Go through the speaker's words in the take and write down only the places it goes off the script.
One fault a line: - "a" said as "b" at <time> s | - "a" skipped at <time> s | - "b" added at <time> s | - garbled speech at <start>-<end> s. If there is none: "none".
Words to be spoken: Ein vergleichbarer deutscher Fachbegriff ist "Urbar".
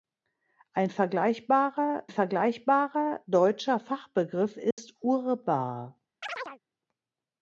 - "vergleichbarer" added at 2.1 s